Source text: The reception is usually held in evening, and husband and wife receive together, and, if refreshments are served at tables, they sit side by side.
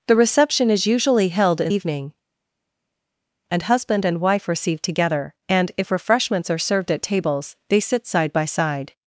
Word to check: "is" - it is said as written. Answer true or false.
true